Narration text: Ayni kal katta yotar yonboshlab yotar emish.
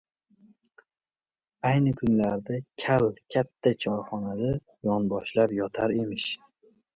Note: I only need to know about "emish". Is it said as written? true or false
true